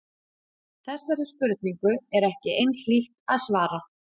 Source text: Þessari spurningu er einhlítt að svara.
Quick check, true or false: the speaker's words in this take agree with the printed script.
false